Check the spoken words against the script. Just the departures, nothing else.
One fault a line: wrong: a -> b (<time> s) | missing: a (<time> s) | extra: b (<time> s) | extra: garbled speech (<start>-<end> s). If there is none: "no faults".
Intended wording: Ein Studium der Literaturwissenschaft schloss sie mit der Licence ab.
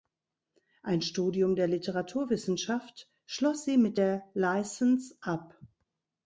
no faults